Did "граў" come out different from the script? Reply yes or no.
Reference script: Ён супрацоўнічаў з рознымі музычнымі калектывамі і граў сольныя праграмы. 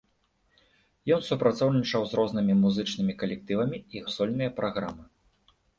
yes